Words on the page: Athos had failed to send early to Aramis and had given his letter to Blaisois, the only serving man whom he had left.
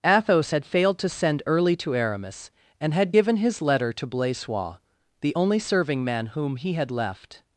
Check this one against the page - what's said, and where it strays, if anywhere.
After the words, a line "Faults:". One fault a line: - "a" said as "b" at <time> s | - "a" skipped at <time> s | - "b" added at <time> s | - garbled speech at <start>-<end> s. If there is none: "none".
Athos had failed to send early to Aramis and had given his letter to Blaisois, the only serving man whom he had left.
Faults:
none